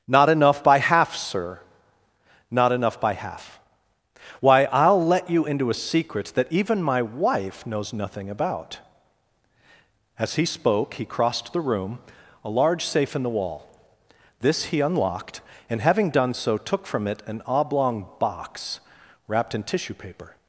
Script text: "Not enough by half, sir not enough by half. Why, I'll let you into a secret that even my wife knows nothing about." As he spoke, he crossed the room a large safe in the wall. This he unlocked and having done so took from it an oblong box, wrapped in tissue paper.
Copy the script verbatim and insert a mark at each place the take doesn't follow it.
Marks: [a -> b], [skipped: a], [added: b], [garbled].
"Not enough by half, sir not enough by half. Why, I'll let you into a secret that even my wife knows nothing about." As he spoke, he crossed the room a large safe in the wall. This he unlocked and having done so took from it an oblong box, wrapped in tissue paper.